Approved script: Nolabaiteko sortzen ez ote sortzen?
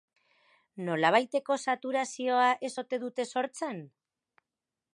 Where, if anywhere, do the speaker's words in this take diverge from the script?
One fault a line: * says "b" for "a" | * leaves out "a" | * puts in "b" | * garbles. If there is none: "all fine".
* says "saturazioa" for "sortzen"
* puts in "dute"